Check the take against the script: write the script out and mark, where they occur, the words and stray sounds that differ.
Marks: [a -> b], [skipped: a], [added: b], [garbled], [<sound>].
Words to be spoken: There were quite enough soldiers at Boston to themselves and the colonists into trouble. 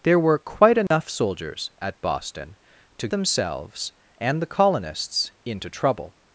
There were quite enough [dropout] soldiers at Boston to themselves and the colonists into trouble.